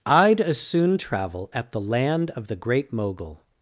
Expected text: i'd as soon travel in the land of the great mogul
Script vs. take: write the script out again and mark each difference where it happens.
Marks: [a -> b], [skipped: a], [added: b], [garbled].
i'd as soon travel [in -> at] the land of the great mogul